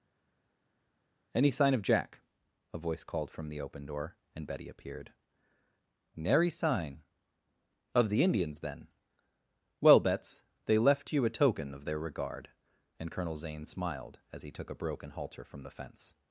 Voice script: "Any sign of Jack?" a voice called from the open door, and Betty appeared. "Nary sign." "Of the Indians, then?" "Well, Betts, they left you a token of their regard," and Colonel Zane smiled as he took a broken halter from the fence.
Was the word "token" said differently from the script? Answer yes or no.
no